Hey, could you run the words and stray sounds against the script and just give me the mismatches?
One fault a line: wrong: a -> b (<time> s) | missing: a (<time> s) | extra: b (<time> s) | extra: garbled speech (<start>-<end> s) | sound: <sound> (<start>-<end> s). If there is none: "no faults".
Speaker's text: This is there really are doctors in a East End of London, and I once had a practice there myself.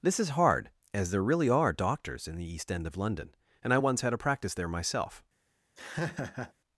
extra: hard as (0.3 s)
wrong: a -> the (2.4 s)
sound: laugh (5.8-6.5 s)